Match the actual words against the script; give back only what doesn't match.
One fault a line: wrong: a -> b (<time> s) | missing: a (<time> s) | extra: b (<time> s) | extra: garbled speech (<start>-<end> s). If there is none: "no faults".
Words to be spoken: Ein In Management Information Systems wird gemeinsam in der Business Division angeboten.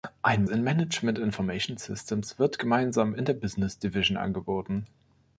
no faults